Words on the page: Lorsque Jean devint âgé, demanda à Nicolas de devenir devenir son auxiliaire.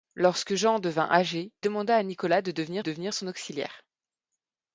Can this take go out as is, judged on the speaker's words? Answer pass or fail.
pass